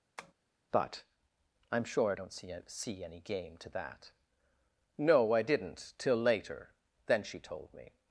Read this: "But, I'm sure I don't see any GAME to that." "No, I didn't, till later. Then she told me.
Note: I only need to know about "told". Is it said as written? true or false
true